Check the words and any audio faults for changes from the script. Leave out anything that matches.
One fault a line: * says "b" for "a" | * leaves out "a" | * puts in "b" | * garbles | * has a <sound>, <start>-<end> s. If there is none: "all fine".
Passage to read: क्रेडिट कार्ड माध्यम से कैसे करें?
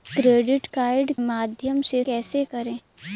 all fine